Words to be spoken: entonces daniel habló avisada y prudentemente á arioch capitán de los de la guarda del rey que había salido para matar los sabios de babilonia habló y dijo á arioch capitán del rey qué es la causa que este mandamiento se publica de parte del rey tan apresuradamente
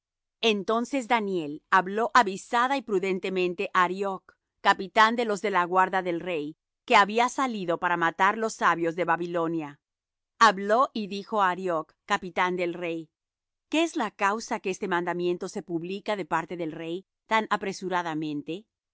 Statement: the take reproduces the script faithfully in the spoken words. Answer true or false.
true